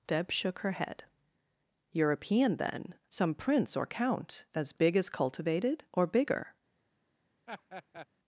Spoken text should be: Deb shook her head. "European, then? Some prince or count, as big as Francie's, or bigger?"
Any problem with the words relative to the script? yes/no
yes